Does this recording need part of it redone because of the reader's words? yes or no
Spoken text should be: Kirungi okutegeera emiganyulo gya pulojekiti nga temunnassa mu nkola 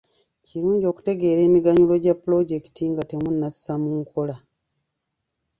no